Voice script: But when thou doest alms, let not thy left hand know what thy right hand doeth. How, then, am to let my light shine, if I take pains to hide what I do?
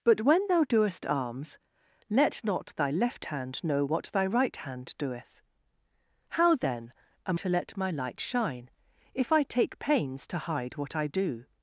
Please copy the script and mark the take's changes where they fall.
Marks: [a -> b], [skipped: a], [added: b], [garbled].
But when thou doest alms, let not thy left hand know what thy right hand doeth. How, then, am to let my light shine, if I take pains to hide what I do?